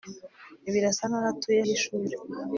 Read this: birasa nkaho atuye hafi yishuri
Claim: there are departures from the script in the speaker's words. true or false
true